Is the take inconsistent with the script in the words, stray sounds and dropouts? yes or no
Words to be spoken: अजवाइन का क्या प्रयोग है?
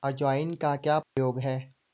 yes